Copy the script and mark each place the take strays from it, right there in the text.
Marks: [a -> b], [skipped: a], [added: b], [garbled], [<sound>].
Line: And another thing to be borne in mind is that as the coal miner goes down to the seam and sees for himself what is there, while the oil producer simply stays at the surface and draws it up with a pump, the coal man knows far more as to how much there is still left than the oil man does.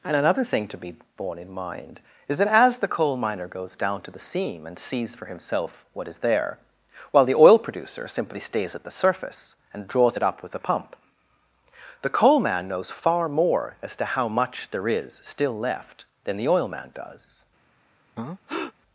And another thing to be borne in mind is that as the coal miner goes down to the seam and sees for himself what is there, while the oil producer simply stays at the surface and draws it up with a pump, the coal man knows far more as to how much there is still left than the oil man does. [breath]